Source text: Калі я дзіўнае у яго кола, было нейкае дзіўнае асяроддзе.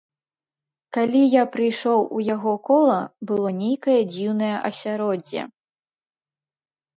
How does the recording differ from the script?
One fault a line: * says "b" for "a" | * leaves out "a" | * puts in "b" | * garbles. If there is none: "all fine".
* says "прыйшоў" for "дзіўнае"